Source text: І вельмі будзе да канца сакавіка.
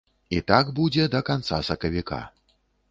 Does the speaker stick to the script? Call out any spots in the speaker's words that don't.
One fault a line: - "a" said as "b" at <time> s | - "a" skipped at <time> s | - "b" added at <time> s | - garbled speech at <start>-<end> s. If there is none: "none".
- "вельмі" said as "так" at 0.5 s